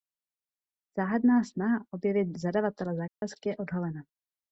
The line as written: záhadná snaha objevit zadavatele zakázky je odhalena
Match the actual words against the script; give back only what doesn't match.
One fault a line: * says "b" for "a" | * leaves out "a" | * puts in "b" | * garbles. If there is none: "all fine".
all fine